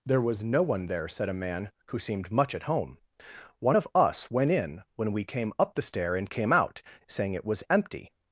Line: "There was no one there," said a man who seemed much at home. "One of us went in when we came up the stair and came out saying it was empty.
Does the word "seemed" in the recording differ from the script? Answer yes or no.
no